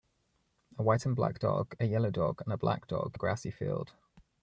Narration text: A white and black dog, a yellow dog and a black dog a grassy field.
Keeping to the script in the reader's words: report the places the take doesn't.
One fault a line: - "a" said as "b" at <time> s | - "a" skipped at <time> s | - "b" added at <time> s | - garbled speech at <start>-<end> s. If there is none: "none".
none